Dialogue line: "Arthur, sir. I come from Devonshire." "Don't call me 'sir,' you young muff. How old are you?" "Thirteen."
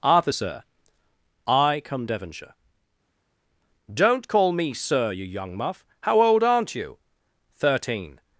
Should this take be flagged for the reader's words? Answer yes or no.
yes